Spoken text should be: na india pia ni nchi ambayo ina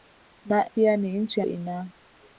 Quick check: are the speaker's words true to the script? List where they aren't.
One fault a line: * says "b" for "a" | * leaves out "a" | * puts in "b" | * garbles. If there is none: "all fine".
* leaves out "india"
* leaves out "ambayo"